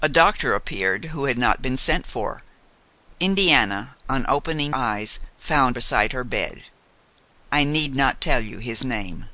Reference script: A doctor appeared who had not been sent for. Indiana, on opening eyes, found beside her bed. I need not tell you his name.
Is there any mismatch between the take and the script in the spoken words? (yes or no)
no